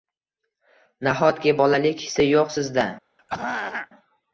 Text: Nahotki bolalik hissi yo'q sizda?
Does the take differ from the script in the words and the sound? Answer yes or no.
yes